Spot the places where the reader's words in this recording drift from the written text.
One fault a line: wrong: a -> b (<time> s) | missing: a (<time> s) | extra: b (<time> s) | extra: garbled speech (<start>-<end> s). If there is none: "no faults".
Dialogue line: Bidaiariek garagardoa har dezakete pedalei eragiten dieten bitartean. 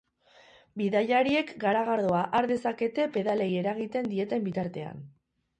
no faults